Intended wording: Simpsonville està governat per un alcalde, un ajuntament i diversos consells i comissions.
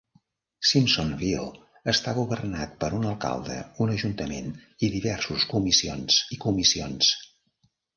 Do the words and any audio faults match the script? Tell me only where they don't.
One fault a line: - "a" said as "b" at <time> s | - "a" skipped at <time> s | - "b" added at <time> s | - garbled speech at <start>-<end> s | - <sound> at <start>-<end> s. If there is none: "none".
- "consells" said as "comissions" at 5.6 s